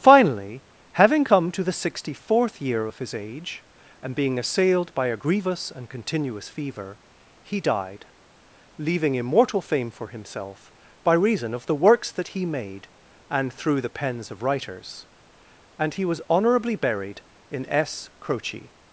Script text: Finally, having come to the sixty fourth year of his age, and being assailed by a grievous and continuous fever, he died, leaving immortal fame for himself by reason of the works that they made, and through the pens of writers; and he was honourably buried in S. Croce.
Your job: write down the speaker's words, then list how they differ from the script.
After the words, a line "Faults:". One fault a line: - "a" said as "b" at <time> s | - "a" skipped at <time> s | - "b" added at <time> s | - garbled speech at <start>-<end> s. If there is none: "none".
Finally, having come to the sixty fourth year of his age, and being assailed by a grievous and continuous fever, he died, leaving immortal fame for himself by reason of the works that he made, and through the pens of writers; and he was honourably buried in S. Croce.
Faults:
- "they" said as "he" at 12.3 s